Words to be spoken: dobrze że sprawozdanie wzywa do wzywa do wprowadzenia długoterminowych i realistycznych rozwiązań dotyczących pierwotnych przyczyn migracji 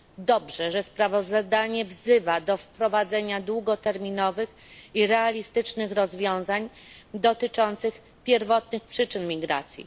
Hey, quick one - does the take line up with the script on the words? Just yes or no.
no